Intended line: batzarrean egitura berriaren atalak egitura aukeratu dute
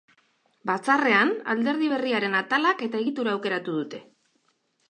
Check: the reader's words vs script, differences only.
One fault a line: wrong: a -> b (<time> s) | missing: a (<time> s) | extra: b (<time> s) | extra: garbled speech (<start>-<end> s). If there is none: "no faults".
wrong: egitura -> alderdi (1.5 s)
extra: eta (2.9 s)